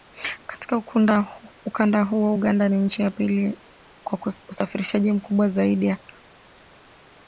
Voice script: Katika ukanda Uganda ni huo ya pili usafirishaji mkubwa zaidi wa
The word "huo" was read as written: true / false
false